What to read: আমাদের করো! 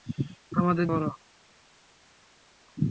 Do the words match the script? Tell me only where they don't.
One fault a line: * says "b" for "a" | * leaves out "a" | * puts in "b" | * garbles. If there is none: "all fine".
all fine